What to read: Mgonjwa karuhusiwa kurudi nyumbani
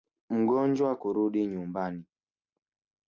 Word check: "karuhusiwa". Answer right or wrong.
wrong